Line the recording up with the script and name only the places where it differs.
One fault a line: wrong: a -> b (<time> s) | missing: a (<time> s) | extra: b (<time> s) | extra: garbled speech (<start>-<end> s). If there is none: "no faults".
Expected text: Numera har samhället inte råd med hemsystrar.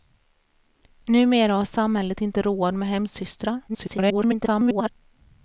extra: garbled speech (3.7-4.9 s)